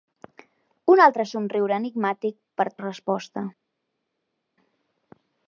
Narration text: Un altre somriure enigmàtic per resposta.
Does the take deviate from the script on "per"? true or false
false